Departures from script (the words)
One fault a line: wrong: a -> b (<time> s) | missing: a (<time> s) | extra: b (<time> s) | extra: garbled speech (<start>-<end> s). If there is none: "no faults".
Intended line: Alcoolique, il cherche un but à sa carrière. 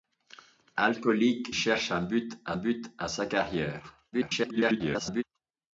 missing: il (1.5 s)
extra: but à (2.5 s)
extra: garbled speech (4.1-5.2 s)